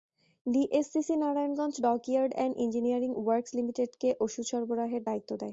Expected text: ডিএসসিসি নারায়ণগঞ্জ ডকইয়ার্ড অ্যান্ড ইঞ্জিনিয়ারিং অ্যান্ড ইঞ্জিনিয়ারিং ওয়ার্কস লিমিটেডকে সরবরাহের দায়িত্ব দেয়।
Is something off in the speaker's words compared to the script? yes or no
yes